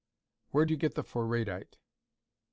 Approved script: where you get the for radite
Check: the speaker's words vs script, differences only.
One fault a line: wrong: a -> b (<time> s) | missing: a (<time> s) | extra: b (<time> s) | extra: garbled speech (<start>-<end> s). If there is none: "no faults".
no faults